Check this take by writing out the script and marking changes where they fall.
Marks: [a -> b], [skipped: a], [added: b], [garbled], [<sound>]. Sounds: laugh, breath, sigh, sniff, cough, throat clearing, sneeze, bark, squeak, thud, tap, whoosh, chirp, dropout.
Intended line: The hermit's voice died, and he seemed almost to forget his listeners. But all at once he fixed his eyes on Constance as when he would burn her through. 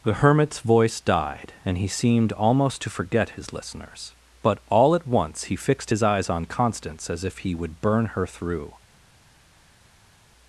The hermit's voice died, and he seemed almost to forget his listeners. But all at once he fixed his eyes on Constance as [when -> if] he would burn her through.